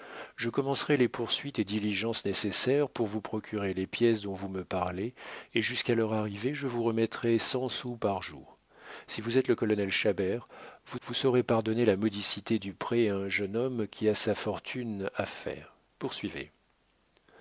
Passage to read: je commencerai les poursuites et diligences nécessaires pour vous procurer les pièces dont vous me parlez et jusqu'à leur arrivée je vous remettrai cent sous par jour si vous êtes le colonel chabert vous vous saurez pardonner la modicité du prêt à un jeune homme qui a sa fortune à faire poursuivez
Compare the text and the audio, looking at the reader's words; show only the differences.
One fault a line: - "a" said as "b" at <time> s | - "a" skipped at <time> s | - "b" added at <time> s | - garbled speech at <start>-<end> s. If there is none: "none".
none